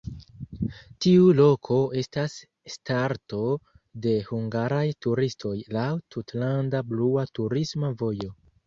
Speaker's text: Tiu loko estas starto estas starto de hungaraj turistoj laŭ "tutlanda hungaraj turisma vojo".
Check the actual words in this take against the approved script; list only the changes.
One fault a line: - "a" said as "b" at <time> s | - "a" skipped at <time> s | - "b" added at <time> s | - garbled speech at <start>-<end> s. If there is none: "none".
- "estas starto" skipped at 3.4 s
- "hungaraj" said as "blua" at 6.9 s